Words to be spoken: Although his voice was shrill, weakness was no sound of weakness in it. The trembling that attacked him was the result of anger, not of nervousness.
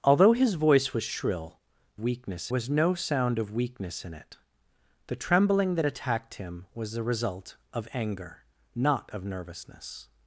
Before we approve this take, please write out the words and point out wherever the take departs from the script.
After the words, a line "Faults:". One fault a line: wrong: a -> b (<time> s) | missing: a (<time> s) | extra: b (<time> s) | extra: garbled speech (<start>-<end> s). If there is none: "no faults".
Although his voice was shrill, weakness was no sound of weakness in it. The trembling that attacked him was the result of anger, not of nervousness.
Faults:
no faults